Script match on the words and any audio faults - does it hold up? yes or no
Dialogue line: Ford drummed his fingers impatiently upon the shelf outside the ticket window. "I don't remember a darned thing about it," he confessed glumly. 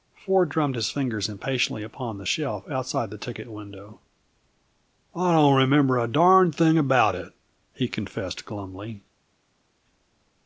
yes